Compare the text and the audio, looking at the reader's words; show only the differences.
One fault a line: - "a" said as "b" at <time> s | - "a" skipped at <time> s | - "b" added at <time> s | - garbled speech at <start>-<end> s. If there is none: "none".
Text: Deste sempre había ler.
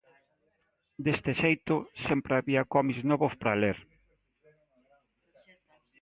- "xeito" added at 1.4 s
- "cómics novos para" added at 2.7 s